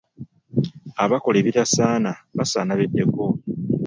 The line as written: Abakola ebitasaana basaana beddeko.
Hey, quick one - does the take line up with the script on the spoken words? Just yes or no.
yes